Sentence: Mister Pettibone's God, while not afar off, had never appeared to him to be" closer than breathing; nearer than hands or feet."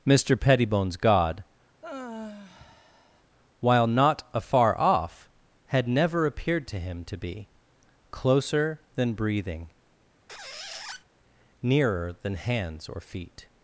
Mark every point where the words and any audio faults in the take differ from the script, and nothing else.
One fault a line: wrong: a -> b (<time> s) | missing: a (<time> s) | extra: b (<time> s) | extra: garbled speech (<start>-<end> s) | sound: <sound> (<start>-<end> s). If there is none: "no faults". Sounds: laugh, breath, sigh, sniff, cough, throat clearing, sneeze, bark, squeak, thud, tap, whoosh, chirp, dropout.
sound: sigh (1.8-3.2 s)
sound: squeak (10.3-11.0 s)